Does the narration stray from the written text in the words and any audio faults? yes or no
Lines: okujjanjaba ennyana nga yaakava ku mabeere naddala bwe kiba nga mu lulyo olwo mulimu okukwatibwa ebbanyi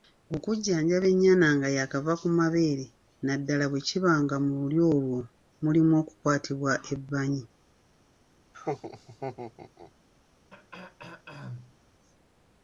yes